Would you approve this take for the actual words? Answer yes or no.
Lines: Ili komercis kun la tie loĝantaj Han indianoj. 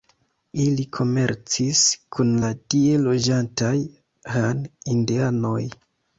yes